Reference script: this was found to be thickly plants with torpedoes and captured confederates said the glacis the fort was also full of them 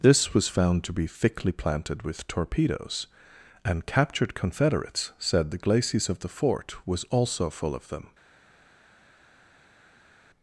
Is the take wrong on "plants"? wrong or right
wrong